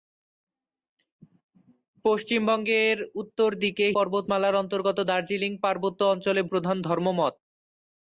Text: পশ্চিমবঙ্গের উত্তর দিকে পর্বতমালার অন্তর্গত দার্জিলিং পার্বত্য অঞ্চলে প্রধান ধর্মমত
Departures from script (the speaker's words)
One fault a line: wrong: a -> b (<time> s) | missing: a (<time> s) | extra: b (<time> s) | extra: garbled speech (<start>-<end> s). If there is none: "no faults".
no faults